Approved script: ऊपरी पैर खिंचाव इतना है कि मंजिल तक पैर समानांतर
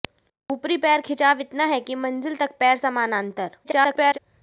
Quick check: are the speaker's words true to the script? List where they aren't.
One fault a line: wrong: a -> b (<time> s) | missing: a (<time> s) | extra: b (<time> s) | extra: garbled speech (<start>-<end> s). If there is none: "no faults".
extra: garbled speech (3.6-4.2 s)